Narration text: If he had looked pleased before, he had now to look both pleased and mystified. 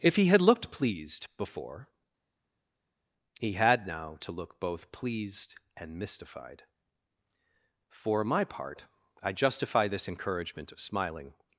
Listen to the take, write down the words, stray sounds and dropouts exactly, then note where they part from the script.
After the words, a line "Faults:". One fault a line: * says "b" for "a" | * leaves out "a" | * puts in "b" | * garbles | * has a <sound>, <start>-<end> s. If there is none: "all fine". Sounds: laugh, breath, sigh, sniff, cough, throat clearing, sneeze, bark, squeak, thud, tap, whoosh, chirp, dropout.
If he had looked pleased before, he had now to look both pleased and mystified. For my part, I justify this encouragement of smiling
Faults:
* puts in "For my part I justify this encouragement of smiling"